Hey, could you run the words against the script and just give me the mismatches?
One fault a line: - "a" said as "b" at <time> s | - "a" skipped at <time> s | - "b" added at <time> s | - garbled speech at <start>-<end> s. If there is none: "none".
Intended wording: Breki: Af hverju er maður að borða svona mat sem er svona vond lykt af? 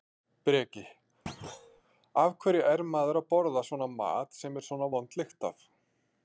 none